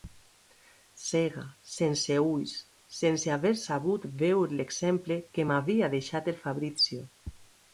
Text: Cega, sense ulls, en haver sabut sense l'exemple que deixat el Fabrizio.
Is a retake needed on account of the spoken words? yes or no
yes